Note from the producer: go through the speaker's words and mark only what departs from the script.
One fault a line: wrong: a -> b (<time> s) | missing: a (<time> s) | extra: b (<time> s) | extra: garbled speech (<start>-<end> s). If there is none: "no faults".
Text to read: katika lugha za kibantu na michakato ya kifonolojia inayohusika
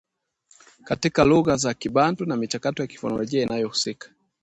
no faults